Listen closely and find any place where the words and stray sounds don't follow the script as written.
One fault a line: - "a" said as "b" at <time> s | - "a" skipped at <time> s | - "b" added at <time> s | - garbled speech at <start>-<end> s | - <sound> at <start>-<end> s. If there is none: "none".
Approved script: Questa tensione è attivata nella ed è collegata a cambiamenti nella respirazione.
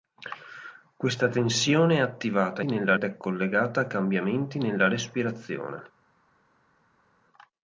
none